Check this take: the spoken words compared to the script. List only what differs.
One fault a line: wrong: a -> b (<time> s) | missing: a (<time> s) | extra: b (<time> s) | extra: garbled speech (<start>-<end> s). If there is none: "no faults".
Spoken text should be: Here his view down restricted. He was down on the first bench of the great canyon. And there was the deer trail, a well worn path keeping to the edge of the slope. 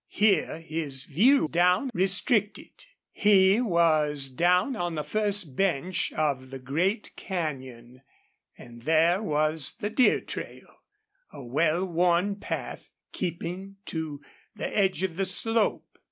no faults